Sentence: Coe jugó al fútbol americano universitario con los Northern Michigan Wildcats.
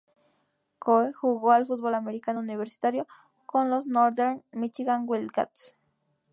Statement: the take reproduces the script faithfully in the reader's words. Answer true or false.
true